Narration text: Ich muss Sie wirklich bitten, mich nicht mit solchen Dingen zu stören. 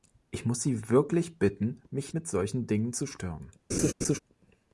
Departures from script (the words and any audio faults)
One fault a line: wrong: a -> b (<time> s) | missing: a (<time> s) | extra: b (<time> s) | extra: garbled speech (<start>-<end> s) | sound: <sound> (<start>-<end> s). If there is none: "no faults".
missing: nicht (2.1 s)
sound: laugh (3.7-4.2 s)